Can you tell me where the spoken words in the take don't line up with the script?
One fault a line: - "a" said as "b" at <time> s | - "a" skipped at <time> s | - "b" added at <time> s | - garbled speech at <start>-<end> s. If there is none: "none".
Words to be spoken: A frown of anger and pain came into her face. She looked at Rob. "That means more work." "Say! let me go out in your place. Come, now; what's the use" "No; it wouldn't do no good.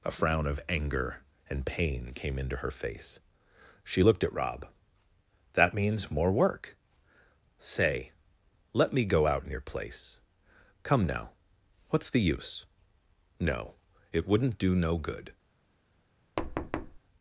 none